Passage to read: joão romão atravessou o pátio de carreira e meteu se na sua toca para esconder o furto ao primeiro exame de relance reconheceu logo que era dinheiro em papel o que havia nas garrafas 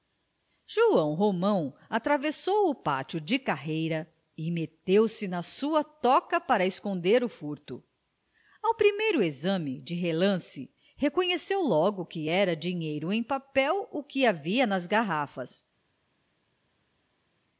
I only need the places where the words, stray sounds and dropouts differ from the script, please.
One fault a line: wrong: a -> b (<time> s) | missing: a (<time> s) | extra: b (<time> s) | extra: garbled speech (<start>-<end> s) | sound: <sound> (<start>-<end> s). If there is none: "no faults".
no faults